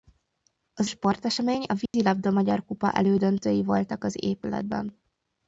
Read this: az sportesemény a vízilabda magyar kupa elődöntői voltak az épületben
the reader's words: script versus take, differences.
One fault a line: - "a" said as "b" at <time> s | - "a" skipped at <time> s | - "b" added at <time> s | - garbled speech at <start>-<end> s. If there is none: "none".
none